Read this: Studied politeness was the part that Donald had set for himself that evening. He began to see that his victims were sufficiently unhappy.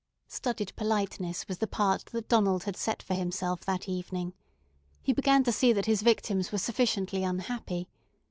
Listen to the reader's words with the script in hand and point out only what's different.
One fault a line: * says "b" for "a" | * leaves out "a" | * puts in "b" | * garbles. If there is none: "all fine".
all fine